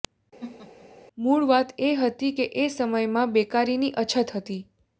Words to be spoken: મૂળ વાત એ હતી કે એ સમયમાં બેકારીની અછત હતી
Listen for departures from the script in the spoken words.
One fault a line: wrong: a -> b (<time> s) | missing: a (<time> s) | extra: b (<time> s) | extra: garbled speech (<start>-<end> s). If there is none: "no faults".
no faults